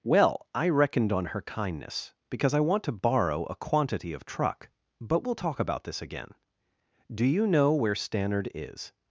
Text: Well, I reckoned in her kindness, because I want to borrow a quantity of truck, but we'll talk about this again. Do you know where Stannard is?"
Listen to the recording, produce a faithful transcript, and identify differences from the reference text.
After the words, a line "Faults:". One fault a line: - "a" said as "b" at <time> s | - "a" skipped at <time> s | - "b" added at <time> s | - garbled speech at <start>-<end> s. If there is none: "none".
Well, I reckoned on her kindness, because I want to borrow a quantity of truck, but we'll talk about this again. Do you know where Stannard is?"
Faults:
- "in" said as "on" at 1.1 s